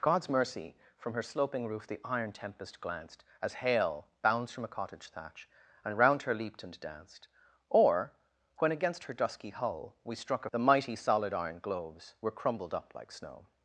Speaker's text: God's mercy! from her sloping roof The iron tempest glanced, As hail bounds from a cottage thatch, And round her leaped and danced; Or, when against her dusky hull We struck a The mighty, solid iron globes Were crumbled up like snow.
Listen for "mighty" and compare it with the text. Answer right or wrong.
right